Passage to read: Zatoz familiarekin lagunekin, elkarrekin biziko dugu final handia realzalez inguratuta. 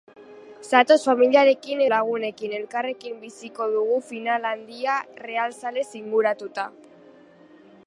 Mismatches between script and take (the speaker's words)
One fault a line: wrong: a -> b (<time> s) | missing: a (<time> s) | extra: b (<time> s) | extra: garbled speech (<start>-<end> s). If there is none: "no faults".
no faults